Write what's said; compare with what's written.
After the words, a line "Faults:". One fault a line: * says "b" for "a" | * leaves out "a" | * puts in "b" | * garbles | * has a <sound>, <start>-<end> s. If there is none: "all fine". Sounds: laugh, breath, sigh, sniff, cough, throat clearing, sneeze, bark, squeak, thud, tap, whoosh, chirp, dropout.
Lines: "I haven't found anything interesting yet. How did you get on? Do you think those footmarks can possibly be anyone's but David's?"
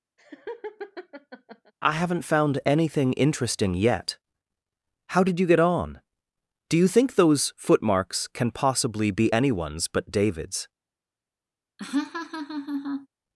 "I haven't found anything interesting yet. How did you get on? Do you think those footmarks can possibly be anyone's but David's?"
Faults:
* has a laugh, 0.2-1.7 s
* has a laugh, 11.8-13.1 s